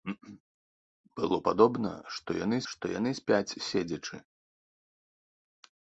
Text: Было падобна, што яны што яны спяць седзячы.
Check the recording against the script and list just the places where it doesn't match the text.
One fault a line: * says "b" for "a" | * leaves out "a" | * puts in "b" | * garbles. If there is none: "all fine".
all fine